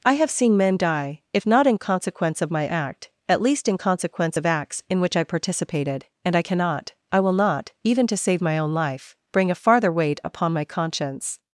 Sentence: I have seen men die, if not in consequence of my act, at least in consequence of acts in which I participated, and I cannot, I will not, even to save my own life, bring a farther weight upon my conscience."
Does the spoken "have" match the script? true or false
true